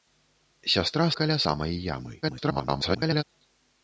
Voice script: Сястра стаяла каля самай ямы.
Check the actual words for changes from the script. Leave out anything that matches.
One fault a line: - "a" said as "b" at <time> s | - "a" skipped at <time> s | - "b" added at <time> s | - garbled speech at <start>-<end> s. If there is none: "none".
- "стаяла" skipped at 1.1 s
- garbled speech at 2.2-3.2 s